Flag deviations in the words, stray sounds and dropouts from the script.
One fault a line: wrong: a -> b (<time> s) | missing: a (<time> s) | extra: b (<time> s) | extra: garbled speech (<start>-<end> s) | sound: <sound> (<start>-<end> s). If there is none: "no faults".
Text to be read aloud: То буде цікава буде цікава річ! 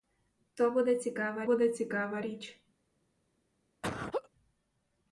sound: laugh (3.8-4.3 s)